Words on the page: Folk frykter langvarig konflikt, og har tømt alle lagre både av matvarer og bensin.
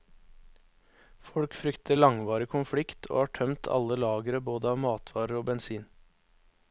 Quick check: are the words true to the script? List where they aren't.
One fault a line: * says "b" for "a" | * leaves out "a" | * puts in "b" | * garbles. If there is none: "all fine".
all fine